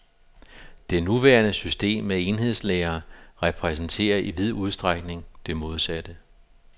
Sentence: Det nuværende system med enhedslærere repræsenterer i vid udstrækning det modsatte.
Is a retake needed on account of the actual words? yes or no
no